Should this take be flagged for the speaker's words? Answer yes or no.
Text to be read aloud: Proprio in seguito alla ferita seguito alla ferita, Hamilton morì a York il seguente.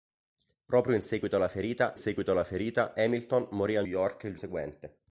no